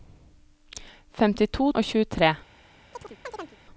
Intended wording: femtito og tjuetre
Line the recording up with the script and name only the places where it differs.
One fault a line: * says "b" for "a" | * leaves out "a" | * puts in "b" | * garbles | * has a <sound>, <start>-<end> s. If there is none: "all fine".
* has a chirp, 2.9-3.6 s